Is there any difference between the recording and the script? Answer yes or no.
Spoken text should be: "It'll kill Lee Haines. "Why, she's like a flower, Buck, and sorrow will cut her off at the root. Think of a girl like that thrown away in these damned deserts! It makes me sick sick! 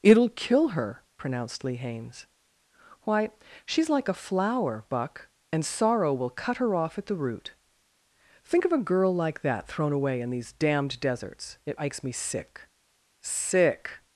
yes